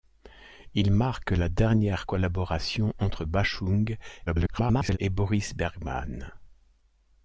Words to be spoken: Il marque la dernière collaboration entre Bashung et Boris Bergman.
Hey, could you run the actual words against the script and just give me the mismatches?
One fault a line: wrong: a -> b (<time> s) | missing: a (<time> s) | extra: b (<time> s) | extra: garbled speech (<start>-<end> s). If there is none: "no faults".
extra: garbled speech (4.3-5.0 s)